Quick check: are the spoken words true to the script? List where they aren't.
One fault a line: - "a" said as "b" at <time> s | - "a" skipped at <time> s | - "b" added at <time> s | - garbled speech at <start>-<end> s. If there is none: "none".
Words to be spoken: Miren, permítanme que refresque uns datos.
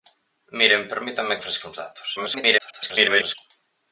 - "que" skipped at 1.4 s
- garbled speech at 2.2-3.4 s